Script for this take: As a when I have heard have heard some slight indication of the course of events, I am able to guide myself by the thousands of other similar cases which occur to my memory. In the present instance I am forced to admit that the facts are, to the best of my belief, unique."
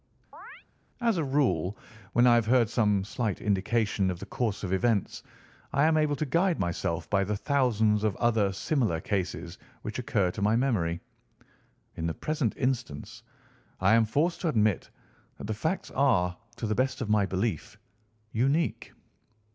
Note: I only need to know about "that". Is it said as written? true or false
true